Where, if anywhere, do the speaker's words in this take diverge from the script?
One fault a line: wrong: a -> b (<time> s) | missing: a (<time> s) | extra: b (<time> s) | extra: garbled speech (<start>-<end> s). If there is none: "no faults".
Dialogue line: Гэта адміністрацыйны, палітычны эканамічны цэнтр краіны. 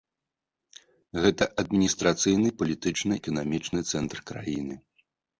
no faults